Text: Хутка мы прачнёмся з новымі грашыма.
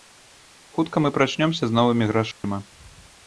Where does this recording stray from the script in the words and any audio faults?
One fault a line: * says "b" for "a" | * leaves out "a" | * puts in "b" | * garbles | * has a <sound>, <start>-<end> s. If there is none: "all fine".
* has a dropout, 2.3-2.4 s